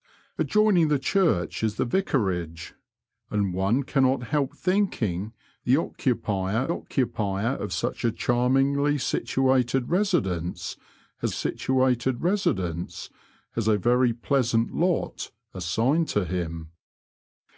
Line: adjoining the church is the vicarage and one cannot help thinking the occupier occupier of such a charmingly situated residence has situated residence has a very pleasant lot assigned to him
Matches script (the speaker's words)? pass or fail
pass